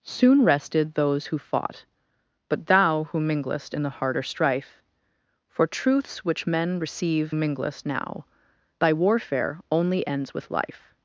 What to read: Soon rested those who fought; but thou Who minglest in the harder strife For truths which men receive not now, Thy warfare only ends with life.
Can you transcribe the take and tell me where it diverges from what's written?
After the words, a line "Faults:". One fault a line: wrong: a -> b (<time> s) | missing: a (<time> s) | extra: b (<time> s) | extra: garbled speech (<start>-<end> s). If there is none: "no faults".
Soon rested those who fought; but thou Who minglest in the harder strife For truths which men receive minglest now, Thy warfare only ends with life.
Faults:
wrong: not -> minglest (7.3 s)